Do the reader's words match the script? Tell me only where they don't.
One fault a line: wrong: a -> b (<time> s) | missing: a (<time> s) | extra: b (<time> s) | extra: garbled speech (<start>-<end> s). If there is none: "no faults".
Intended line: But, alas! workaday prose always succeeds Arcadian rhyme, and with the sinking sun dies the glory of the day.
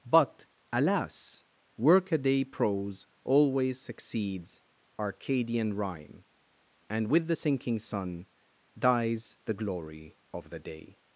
no faults